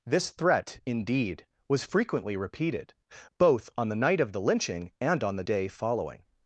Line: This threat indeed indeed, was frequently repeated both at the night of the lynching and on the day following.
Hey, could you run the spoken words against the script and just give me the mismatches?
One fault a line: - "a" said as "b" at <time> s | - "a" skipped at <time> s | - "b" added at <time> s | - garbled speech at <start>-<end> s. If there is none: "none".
- "indeed" skipped at 1.4 s
- "at" said as "on" at 3.8 s